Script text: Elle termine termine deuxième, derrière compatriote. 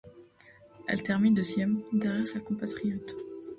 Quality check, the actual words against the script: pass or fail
fail